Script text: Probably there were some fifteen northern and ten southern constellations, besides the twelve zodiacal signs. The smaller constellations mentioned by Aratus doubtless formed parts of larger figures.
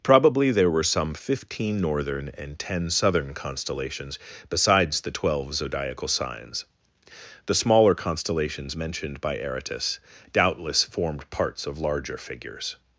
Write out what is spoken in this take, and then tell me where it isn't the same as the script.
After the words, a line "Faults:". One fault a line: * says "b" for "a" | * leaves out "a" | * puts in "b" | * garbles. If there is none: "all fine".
Probably there were some fifteen northern and ten southern constellations, besides the twelve zodiacal signs. The smaller constellations mentioned by Aratus doubtless formed parts of larger figures.
Faults:
all fine